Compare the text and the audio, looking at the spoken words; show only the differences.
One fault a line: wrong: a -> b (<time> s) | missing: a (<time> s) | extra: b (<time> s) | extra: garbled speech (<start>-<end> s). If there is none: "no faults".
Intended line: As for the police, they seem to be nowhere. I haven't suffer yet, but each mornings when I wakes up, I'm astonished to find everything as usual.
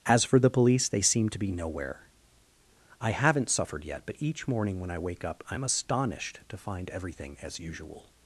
wrong: suffer -> suffered (3.5 s)
wrong: mornings -> morning (4.5 s)
wrong: wakes -> wake (5.0 s)